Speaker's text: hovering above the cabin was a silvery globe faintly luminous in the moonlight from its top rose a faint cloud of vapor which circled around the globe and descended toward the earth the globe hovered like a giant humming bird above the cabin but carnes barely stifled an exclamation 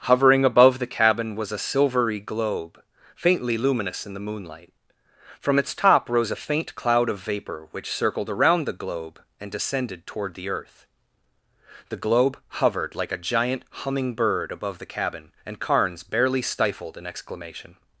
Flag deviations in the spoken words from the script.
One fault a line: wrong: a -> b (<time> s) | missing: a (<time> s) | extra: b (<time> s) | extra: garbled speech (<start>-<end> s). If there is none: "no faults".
wrong: but -> and (15.4 s)